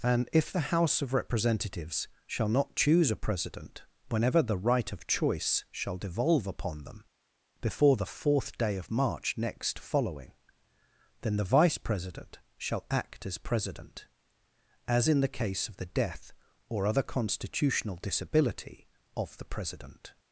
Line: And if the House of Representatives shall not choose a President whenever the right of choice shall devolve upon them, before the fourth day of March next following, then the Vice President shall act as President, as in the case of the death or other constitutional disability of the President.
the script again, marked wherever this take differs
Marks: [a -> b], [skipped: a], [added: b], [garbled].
And if the House of Representatives shall not choose a President whenever the right of choice shall devolve upon them, before the fourth day of March next following, then the Vice President shall act as President, as in the case of the death or other constitutional disability of the President.